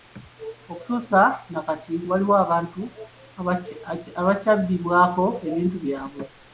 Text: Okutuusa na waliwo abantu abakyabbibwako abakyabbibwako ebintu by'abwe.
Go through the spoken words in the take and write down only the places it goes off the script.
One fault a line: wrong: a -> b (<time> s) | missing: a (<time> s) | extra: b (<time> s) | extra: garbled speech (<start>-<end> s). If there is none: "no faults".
extra: kati (1.7 s)
missing: abakyabbibwako (5.3 s)